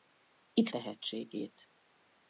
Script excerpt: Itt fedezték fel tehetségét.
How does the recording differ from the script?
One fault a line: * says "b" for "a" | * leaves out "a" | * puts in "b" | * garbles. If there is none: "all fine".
* leaves out "fedezték fel"